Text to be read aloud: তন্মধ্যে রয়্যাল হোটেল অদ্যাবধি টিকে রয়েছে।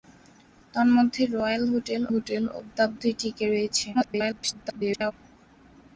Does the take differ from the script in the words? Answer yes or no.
yes